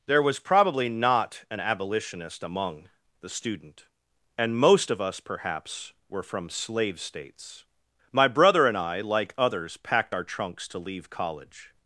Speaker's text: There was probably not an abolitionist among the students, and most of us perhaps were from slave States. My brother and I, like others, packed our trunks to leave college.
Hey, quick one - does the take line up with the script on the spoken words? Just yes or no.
no